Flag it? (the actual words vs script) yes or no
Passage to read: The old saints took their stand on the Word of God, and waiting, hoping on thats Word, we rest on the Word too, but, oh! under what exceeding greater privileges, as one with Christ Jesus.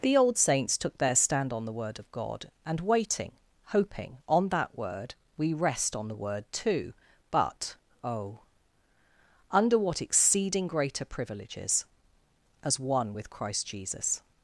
yes